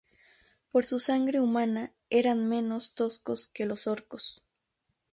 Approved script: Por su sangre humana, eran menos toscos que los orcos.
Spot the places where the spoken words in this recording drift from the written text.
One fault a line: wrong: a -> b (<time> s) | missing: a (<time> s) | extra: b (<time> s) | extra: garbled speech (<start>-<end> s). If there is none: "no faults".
no faults